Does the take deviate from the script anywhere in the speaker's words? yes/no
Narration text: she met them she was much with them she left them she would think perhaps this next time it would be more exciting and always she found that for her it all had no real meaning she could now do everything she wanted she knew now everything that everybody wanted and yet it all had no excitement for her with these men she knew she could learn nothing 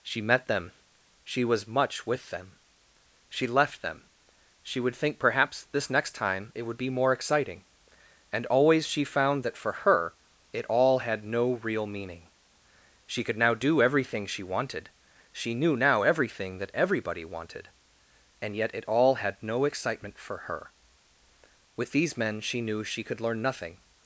no